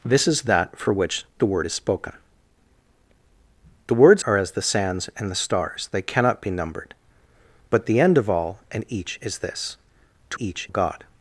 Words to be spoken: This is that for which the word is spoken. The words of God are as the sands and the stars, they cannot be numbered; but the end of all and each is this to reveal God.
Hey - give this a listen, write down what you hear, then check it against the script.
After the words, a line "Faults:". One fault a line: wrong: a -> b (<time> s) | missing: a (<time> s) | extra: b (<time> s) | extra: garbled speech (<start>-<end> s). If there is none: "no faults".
This is that for which the word is spoken. The words are as the sands and the stars, they cannot be numbered; but the end of all and each is this to each God.
Faults:
missing: of God (4.2 s)
wrong: reveal -> each (10.4 s)